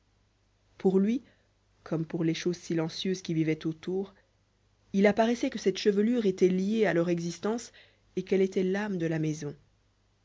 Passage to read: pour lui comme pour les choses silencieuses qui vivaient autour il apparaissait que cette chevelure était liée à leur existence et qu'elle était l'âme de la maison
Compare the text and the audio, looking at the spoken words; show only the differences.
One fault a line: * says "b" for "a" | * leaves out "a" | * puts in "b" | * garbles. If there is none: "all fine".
all fine